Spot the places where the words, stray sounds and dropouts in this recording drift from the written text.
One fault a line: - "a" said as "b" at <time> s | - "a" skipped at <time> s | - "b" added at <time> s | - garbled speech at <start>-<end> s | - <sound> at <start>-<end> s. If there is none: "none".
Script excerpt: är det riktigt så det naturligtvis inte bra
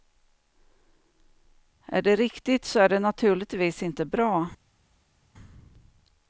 - "är" added at 2.8 s